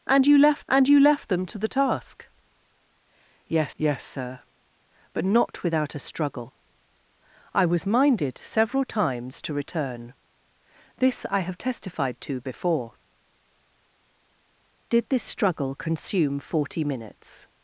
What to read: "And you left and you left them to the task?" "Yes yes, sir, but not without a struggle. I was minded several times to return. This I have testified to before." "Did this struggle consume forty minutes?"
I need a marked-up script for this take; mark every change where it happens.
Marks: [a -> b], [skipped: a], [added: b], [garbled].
"And you left and you left them to the task?" "Yes yes, sir, but not without a struggle. I was minded several times to return. This I have testified to before." "Did this struggle consume forty minutes?"